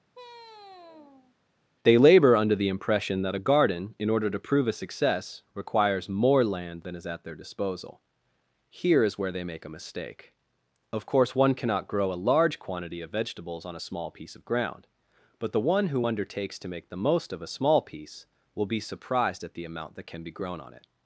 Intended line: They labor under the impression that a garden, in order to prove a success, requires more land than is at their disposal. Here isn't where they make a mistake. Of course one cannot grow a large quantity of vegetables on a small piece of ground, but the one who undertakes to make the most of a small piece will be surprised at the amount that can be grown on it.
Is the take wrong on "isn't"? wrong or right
wrong